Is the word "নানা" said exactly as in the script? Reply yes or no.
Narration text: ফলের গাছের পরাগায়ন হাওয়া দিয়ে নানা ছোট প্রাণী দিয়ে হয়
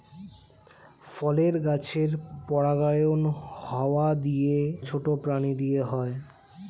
no